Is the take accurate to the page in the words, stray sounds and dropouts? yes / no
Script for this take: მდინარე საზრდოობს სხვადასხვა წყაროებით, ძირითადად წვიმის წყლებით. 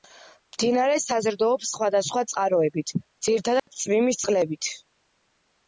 no